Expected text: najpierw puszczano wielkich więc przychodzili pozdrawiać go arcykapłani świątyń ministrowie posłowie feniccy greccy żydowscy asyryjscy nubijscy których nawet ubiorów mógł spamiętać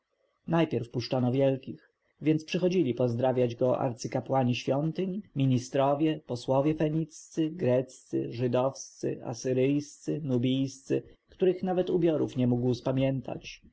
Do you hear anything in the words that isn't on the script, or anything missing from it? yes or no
yes